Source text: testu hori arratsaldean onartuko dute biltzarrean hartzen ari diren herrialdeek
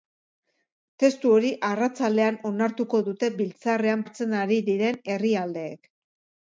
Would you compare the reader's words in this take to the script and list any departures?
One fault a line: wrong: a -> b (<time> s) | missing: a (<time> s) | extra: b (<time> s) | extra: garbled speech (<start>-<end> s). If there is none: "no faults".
no faults